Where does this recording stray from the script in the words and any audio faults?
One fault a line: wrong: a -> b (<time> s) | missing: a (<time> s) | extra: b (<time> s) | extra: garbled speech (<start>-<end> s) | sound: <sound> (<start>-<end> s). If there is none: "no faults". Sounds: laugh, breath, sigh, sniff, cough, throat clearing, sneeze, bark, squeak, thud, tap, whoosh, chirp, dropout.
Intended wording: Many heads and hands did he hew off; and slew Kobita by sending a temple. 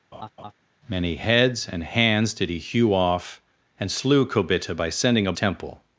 sound: laugh (0.1-0.5 s)